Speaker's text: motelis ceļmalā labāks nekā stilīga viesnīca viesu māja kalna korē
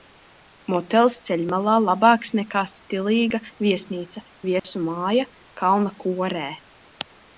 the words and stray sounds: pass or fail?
fail